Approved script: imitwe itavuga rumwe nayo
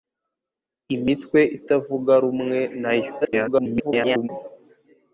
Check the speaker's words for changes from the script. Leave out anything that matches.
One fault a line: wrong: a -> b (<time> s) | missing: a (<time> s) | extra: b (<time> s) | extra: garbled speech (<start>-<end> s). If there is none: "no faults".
extra: garbled speech (3.2-4.3 s)